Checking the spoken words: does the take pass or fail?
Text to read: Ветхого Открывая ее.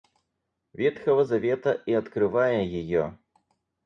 fail